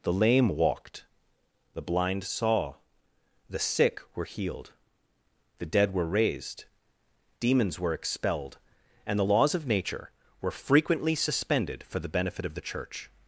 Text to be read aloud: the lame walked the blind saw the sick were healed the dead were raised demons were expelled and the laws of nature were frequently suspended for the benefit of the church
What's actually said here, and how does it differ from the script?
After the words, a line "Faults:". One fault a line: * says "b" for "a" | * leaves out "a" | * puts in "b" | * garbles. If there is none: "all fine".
the lame walked the blind saw the sick were healed the dead were raised demons were expelled and the laws of nature were frequently suspended for the benefit of the church
Faults:
all fine